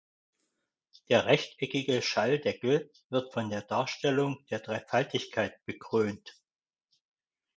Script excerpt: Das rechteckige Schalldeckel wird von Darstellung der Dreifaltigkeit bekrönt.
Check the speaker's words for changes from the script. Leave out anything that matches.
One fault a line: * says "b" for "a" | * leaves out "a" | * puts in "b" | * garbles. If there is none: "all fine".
* says "Der" for "Das"
* puts in "der"